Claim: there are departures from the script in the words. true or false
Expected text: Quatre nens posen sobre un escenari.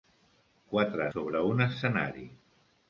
true